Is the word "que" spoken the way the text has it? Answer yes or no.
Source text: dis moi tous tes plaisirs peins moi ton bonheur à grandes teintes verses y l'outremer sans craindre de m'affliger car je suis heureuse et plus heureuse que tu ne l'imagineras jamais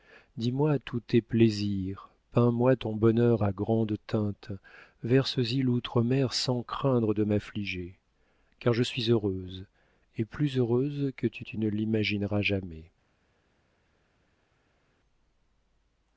yes